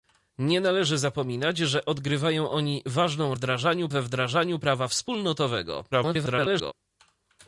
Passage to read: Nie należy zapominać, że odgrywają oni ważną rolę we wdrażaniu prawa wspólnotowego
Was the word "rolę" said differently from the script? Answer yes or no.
yes